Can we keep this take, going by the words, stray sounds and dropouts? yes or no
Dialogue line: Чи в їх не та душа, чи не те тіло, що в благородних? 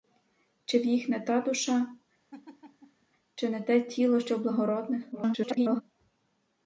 no